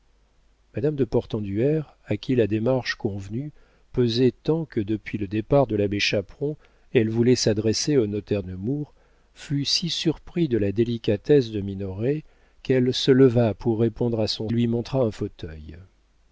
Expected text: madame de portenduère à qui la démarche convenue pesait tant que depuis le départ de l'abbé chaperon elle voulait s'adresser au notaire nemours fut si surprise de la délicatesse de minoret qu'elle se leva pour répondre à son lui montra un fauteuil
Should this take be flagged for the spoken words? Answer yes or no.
no